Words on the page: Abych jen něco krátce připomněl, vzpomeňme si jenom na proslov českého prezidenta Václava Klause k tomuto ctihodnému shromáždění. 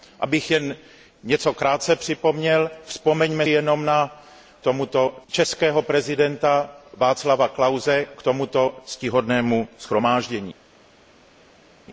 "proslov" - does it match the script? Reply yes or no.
no